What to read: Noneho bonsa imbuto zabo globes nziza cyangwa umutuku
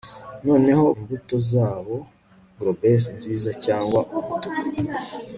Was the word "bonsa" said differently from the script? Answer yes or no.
yes